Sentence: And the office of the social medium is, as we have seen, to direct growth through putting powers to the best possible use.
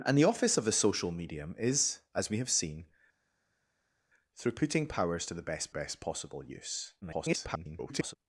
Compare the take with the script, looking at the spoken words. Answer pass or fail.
fail